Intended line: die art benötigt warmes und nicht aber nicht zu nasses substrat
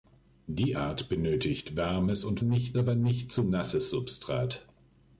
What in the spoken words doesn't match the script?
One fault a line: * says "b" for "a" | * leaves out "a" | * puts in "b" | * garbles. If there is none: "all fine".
all fine